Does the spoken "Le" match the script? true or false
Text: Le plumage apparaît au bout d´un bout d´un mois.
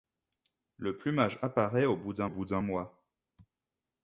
true